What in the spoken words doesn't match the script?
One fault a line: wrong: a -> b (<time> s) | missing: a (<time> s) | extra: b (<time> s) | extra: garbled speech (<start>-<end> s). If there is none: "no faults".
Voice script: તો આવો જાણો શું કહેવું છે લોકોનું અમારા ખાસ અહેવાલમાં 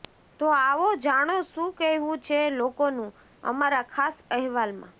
no faults